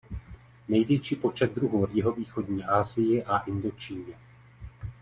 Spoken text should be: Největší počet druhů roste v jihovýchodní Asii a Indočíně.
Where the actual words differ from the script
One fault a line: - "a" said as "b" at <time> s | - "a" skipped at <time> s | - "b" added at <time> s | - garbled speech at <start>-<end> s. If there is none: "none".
- "roste" skipped at 1.8 s